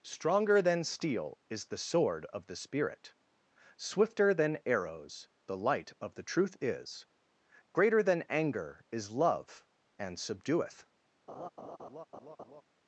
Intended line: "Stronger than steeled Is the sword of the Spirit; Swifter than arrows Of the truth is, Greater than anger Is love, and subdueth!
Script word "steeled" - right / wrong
wrong